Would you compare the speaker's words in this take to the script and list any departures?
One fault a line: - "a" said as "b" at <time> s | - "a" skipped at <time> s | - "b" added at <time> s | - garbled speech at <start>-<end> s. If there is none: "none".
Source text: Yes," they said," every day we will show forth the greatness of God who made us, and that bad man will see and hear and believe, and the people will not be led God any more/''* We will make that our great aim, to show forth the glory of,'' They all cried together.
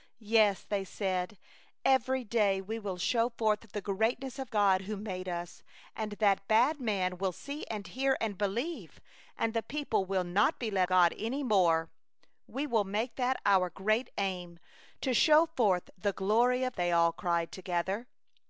none